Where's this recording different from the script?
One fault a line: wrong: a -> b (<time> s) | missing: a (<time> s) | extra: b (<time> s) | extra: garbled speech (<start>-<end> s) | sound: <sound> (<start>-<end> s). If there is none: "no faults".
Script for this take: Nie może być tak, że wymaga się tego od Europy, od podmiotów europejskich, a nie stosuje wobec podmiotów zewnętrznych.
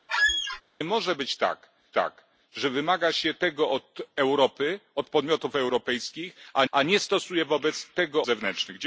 sound: squeak (0.1-0.6 s)
extra: tak (1.9 s)
extra: a (6.7 s)
wrong: podmiotów -> tego (7.9 s)